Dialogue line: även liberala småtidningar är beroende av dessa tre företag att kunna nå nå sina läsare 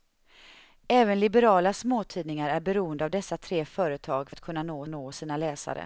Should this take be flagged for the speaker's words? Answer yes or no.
no